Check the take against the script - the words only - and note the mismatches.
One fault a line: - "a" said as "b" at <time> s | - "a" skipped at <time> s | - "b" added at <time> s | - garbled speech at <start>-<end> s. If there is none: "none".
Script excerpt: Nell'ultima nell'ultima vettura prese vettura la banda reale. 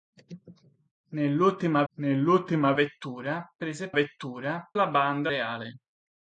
none